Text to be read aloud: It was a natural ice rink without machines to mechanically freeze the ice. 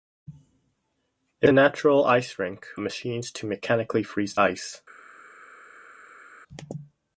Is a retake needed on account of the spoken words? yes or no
yes